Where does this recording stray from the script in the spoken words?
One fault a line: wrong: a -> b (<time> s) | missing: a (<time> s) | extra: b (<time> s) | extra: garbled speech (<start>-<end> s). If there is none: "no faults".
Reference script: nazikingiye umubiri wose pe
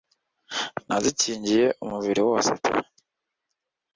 no faults